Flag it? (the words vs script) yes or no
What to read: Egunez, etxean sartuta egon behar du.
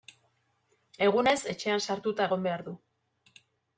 no